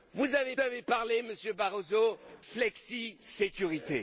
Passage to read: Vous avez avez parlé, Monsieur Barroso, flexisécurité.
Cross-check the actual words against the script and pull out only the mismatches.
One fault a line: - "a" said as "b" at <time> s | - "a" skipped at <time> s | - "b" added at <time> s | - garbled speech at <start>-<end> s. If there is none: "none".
none